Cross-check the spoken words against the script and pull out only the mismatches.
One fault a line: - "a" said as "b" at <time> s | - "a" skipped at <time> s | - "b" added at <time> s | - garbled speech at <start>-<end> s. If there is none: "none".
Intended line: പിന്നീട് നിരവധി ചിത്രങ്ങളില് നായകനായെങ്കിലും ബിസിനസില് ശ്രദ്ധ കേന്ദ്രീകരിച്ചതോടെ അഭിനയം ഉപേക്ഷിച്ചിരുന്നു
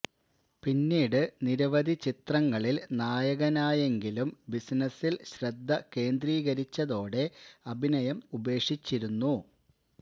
none